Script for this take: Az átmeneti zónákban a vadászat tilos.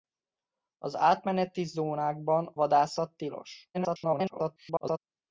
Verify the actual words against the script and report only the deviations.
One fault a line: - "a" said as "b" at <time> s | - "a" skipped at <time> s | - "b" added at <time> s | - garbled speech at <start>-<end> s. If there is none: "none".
- "a" skipped at 2.5 s
- garbled speech at 3.7-5.0 s